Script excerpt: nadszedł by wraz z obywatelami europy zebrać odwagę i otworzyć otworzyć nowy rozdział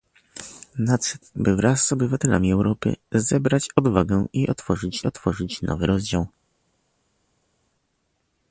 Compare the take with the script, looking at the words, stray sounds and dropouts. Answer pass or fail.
pass